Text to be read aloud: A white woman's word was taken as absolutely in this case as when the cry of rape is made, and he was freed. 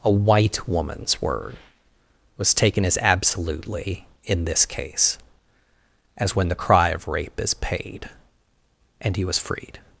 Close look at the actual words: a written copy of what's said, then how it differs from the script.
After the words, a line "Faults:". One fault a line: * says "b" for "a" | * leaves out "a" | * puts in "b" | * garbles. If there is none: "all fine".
A white woman's word was taken as absolutely in this case as when the cry of rape is paid, and he was freed.
Faults:
* says "paid" for "made"